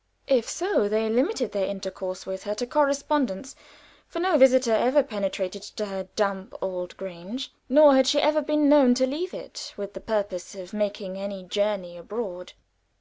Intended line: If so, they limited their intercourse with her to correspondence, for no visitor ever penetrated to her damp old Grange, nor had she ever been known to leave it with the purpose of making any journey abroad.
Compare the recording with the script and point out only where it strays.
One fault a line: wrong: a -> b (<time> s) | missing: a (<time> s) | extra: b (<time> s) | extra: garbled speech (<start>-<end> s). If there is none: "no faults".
no faults